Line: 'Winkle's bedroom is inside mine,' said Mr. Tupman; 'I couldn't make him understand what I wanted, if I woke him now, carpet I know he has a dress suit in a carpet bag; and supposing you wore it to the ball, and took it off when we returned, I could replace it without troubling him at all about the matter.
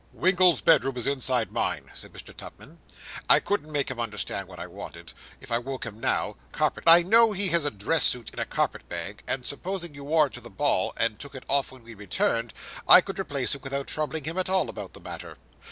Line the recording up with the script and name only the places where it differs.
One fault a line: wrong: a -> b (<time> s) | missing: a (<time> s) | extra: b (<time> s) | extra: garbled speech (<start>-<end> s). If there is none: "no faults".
no faults